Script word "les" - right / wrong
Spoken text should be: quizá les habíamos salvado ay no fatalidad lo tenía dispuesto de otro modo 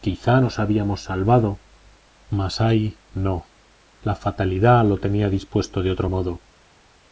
wrong